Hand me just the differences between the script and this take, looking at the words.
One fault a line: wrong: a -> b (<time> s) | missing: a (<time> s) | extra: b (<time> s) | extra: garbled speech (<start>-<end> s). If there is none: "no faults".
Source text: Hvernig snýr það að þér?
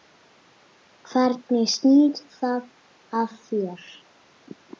no faults